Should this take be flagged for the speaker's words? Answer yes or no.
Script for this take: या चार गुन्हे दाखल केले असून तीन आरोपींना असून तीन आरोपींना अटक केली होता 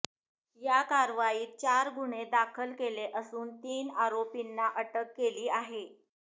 yes